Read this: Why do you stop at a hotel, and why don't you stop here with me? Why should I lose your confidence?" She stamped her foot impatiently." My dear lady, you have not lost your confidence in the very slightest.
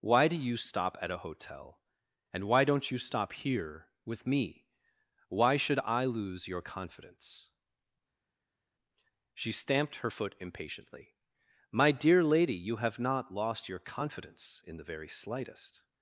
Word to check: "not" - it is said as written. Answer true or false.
true